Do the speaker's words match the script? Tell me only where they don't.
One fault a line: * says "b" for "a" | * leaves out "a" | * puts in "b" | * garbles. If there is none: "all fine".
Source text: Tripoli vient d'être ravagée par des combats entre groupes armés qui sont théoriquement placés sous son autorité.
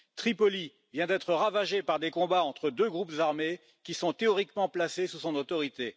* puts in "deux"